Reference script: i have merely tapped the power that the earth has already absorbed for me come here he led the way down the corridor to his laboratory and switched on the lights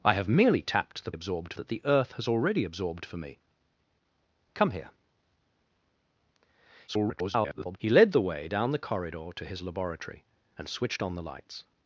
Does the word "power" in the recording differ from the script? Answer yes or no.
yes